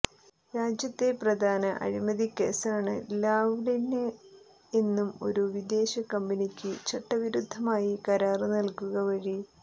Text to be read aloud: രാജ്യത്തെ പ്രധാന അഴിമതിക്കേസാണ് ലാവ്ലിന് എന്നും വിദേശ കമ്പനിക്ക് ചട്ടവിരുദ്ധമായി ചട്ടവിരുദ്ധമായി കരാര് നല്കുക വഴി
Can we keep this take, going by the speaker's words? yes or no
no